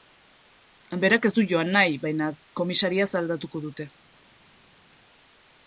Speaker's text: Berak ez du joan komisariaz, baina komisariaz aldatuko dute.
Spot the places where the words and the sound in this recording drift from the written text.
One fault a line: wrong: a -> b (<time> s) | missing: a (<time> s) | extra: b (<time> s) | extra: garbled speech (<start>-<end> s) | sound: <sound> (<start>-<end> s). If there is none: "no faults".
wrong: komisariaz -> nahi (1.8 s)